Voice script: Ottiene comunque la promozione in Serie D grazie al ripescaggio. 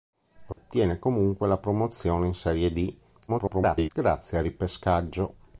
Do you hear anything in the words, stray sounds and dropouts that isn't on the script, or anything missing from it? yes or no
yes